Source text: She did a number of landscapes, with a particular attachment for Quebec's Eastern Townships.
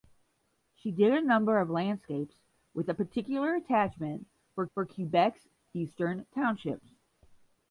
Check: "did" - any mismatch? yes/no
no